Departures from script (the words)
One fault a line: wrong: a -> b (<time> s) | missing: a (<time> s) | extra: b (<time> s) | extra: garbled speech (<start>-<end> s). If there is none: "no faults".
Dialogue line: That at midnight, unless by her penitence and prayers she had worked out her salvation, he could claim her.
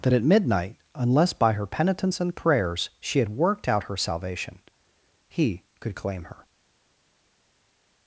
no faults